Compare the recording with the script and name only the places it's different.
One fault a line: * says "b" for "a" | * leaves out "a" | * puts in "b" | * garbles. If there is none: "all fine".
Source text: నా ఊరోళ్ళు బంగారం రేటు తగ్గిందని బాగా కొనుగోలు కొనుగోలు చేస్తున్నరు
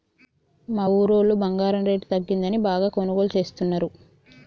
* says "మా" for "నా"
* leaves out "కొనుగోలు"